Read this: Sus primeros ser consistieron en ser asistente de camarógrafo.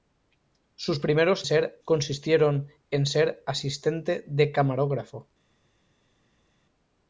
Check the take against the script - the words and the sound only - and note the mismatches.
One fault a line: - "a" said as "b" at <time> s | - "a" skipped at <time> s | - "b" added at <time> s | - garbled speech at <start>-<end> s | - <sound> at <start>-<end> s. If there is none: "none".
none